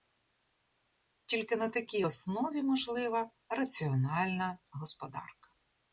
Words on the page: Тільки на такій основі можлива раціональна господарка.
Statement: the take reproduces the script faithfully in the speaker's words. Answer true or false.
true